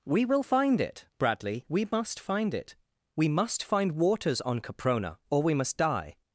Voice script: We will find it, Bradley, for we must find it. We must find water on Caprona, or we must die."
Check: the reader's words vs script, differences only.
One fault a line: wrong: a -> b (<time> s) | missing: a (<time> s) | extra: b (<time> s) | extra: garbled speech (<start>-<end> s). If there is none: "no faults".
missing: for (1.6 s)
wrong: water -> waters (3.9 s)